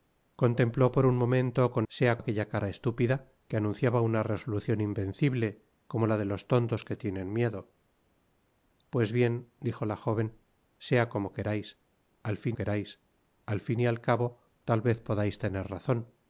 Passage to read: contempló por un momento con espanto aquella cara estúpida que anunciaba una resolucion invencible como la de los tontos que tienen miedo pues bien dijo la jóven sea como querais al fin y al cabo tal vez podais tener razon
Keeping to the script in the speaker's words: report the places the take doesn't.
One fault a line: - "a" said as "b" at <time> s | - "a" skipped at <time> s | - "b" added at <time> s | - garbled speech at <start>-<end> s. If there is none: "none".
- "espanto" said as "sea" at 1.9 s
- "querais al fin" added at 12.5 s